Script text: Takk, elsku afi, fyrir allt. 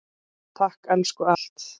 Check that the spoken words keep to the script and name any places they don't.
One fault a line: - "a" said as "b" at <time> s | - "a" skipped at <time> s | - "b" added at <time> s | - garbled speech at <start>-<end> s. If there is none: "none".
- "afi fyrir" skipped at 1.3 s